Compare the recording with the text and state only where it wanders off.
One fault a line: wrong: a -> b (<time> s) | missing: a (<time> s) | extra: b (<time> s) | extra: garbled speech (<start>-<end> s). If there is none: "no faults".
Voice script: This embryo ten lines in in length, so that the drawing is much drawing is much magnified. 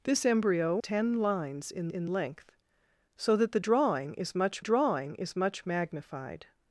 no faults